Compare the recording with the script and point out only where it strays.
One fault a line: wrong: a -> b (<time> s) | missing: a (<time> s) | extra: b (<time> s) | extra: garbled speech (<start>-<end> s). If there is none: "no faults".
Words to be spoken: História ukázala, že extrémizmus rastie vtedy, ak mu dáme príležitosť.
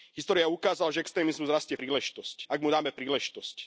wrong: vtedy -> príležitosť (1.7 s)